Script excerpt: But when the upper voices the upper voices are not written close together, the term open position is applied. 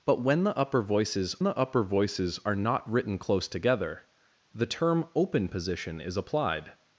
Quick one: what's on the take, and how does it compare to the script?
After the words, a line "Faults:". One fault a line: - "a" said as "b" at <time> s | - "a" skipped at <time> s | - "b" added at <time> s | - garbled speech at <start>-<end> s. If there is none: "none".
But when the upper voices the upper voices are not written close together, the term open position is applied.
Faults:
none